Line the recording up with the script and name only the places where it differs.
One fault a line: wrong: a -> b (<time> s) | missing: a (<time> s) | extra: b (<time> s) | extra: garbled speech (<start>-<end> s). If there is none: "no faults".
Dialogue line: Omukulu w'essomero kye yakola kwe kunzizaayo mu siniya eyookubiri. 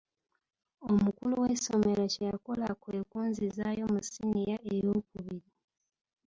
no faults